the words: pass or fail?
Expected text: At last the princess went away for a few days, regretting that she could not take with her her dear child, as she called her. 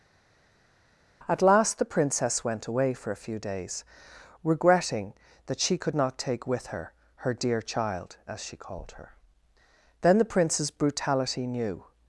fail